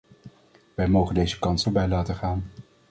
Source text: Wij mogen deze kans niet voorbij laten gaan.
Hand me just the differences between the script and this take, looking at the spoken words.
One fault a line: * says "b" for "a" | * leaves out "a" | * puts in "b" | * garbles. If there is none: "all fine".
* leaves out "niet"